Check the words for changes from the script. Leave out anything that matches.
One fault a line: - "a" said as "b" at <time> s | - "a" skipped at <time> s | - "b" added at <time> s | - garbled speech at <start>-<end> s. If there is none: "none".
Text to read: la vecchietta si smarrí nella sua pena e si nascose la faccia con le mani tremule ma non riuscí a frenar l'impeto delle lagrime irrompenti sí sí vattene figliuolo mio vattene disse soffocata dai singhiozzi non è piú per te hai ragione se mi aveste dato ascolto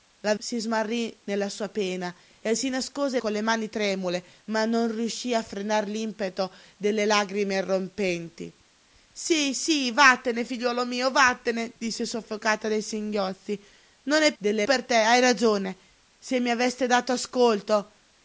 - "vecchietta" skipped at 0.3 s
- "la faccia" skipped at 3.2 s
- "piú" said as "delle" at 14.4 s